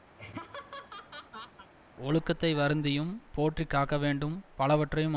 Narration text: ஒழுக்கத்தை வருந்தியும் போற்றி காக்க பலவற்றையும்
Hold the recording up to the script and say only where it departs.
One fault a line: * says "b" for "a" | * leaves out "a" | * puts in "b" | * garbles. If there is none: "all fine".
* puts in "வேண்டும்"